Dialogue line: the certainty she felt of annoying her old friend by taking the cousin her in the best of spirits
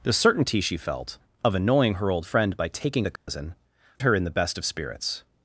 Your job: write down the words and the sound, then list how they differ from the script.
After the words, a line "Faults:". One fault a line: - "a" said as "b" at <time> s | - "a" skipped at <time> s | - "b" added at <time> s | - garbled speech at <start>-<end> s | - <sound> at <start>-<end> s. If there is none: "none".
the certainty she felt of annoying her old friend by taking the cousin her in the best of spirits
Faults:
- dropout at 3.2-3.3 s